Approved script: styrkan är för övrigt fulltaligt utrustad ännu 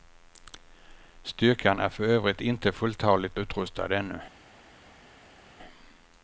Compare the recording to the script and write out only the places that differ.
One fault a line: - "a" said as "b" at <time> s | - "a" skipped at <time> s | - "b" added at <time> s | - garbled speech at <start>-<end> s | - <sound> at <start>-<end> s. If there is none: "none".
- "inte" added at 2.4 s